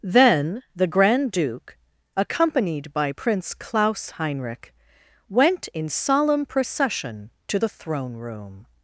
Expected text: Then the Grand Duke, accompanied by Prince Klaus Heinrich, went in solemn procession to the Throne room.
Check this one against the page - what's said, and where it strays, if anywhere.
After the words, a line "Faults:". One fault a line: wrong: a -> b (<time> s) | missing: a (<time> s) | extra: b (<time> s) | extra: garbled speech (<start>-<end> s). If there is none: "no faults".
Then the Grand Duke, accompanied by Prince Klaus Heinrich, went in solemn procession to the Throne room.
Faults:
no faults